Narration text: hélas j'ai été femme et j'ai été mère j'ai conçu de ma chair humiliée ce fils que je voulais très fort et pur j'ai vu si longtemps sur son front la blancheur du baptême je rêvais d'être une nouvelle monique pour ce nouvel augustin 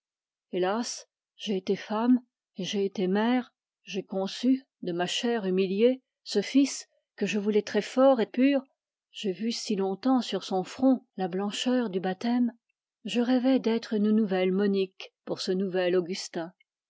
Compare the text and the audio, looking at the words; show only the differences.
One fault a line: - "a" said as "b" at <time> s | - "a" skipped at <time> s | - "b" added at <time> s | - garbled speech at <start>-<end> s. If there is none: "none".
none